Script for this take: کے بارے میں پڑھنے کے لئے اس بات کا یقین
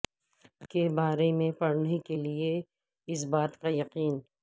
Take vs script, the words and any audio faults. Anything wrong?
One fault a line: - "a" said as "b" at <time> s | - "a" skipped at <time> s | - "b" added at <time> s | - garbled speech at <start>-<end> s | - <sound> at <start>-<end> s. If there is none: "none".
none